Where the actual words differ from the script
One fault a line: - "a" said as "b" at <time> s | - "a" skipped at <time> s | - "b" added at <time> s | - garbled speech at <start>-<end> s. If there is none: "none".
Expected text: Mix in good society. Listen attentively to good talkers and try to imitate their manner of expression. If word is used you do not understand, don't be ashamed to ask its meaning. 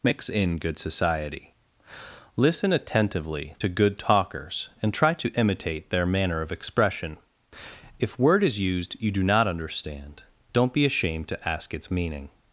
none